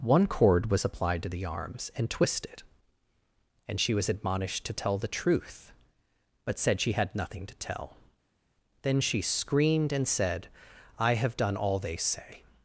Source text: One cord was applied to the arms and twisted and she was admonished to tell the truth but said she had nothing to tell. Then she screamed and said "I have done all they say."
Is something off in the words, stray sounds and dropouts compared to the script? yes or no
no